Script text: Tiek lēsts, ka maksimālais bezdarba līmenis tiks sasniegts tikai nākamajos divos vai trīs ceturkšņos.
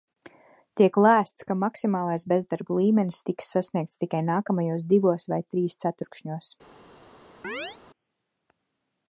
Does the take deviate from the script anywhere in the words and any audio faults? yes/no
yes